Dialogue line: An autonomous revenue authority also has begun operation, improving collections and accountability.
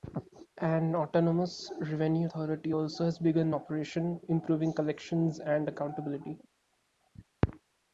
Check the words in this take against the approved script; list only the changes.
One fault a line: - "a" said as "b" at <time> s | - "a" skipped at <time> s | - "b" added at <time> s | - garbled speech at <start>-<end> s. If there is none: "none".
none